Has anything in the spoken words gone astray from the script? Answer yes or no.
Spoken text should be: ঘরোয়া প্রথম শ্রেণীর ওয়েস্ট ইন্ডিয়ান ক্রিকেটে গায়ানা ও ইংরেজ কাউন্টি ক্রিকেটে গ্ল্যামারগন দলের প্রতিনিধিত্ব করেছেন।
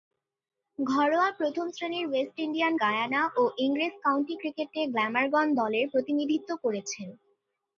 yes